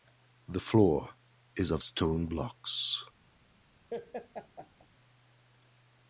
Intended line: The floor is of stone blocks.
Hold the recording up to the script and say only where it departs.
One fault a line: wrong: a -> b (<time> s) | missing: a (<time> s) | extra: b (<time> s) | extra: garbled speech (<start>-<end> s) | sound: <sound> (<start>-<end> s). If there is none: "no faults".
sound: laugh (3.9-4.9 s)